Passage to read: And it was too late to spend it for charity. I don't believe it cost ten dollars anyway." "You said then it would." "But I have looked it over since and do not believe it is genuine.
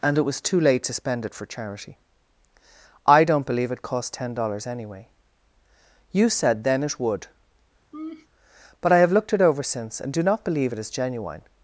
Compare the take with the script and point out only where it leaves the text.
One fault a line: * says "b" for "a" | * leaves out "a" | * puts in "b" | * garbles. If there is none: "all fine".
all fine